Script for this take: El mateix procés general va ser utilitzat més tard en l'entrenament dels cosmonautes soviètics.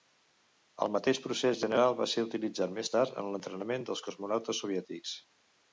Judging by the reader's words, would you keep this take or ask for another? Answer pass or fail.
pass